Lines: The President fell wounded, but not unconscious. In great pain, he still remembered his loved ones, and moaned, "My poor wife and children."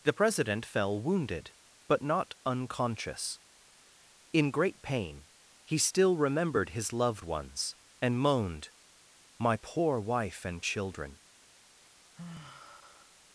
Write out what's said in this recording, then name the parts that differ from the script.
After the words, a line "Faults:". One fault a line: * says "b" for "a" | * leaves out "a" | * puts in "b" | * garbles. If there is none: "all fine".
The President fell wounded, but not unconscious. In great pain, he still remembered his loved ones, and moaned, "My poor wife and children."
Faults:
all fine